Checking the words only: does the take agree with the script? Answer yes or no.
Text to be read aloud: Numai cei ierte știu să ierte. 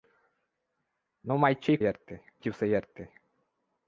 yes